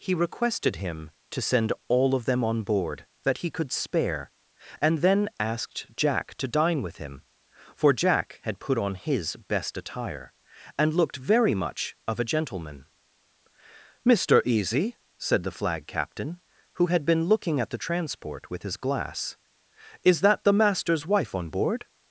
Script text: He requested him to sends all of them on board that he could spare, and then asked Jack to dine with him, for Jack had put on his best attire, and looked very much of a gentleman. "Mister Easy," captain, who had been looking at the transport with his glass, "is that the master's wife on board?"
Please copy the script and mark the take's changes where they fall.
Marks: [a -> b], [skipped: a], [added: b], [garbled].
He requested him to [sends -> send] all of them on board that he could spare, and then asked Jack to dine with him, for Jack had put on his best attire, and looked very much of a gentleman. "Mister Easy," [added: said the flag] captain, who had been looking at the transport with his glass, "is that the master's wife on board?"